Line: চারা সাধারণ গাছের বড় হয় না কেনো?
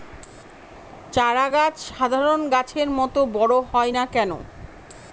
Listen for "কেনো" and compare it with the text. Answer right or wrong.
right